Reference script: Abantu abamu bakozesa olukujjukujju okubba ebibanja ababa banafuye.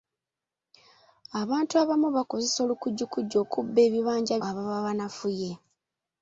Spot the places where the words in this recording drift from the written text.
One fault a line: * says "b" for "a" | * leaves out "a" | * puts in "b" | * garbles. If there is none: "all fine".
all fine